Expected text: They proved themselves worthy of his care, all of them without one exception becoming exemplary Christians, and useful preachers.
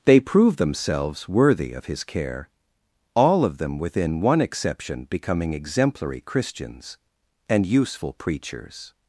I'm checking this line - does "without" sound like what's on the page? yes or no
no